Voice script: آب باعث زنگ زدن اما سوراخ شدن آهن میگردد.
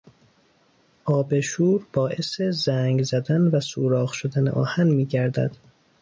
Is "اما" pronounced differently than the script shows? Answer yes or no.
yes